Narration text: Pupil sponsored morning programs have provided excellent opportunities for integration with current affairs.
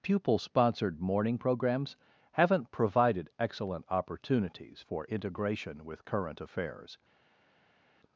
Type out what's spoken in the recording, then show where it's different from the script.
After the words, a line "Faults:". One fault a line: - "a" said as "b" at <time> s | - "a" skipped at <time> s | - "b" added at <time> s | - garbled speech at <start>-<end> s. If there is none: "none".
Pupil sponsored morning programs haven't provided excellent opportunities for integration with current affairs.
Faults:
- "have" said as "haven't" at 2.3 s